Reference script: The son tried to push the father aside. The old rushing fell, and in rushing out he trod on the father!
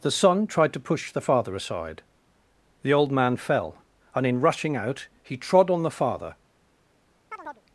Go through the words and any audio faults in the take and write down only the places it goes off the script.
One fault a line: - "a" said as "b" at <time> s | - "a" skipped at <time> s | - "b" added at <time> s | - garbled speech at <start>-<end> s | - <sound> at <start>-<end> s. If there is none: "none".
- "rushing" said as "man" at 3.1 s
- chirp at 7.3-7.6 s